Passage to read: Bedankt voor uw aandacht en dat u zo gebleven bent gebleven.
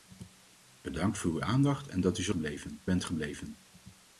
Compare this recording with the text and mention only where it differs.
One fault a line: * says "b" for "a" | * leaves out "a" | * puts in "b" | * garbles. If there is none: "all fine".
all fine